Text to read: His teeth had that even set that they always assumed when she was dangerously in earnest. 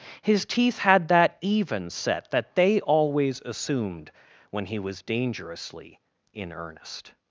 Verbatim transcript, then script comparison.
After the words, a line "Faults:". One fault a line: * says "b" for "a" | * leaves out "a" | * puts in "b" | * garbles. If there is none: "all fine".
His teeth had that even set that they always assumed when he was dangerously in earnest.
Faults:
* says "he" for "she"